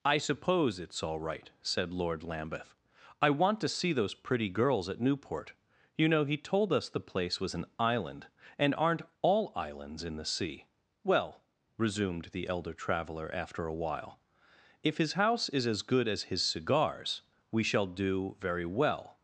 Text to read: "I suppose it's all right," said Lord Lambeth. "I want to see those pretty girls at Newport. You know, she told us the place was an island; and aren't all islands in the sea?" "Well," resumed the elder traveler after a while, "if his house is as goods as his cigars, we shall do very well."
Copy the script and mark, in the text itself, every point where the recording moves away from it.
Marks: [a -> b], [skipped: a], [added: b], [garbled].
"I suppose it's all right," said Lord Lambeth. "I want to see those pretty girls at Newport. You know, [she -> he] told us the place was an island; and aren't all islands in the sea?" "Well," resumed the elder traveler after a while, "if his house is as [goods -> good] as his cigars, we shall do very well."